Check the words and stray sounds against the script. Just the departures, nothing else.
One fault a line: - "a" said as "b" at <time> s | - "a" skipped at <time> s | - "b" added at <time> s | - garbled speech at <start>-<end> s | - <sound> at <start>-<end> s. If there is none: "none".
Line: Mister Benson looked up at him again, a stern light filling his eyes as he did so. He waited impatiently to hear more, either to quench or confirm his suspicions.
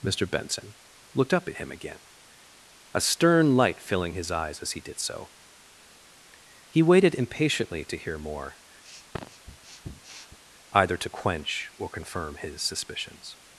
- sniff at 8.8-10.4 s